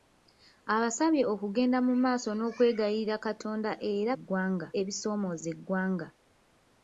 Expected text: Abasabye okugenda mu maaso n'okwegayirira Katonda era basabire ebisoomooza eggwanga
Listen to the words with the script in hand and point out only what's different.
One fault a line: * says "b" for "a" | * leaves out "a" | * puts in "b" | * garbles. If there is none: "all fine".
* says "eggwanga" for "basabire"